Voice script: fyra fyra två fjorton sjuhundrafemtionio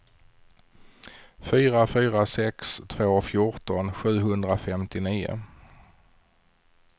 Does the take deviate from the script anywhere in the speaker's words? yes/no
yes